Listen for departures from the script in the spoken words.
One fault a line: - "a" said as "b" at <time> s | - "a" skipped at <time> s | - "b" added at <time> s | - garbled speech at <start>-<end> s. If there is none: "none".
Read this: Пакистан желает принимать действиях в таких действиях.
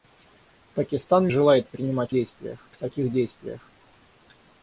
none